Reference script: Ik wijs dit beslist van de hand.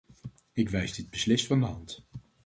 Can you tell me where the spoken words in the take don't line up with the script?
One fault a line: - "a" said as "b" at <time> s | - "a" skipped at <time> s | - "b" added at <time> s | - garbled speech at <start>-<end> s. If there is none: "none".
none